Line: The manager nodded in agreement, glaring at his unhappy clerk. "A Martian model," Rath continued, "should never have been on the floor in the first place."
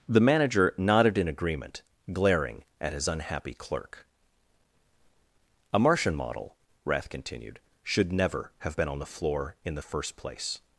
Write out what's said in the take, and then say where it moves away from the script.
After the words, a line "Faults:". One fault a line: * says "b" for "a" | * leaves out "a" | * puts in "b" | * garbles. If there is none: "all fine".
The manager nodded in agreement, glaring at his unhappy clerk. "A Martian model," Rath continued, "should never have been on the floor in the first place."
Faults:
all fine